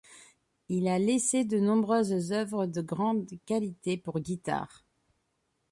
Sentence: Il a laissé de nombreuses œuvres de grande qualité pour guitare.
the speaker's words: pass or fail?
pass